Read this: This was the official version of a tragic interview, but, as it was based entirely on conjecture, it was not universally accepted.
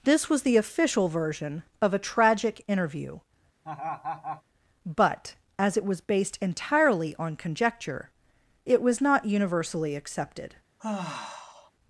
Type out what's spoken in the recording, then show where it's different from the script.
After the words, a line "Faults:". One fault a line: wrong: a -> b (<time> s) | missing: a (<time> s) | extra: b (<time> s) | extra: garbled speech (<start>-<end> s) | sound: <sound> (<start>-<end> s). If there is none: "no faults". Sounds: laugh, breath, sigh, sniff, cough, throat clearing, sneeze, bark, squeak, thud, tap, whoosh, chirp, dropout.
This was the official version of a tragic interview, but, as it was based entirely on conjecture, it was not universally accepted.
Faults:
sound: laugh (3.6-4.4 s)
sound: sigh (10.8-11.7 s)